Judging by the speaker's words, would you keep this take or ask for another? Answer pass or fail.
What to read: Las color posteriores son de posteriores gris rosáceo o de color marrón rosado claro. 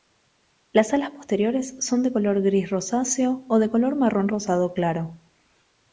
fail